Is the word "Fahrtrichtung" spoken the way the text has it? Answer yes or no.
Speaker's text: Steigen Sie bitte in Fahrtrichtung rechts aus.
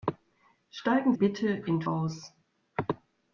no